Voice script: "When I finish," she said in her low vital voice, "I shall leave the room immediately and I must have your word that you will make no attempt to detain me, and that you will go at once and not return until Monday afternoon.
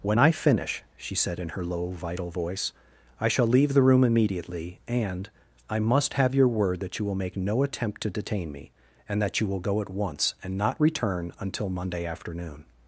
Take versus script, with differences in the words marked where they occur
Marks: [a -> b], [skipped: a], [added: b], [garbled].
"When I finish," she said in her low vital voice, "I shall leave the room immediately and I must have your word that you will make no attempt to detain me, and that you will go at once and not return until Monday afternoon.